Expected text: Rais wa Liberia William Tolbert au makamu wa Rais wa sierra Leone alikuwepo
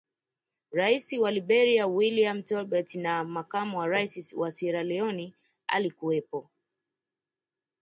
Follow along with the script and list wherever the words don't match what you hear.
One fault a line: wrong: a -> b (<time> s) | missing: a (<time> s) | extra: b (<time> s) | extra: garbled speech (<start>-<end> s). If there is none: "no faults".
wrong: au -> na (3.0 s)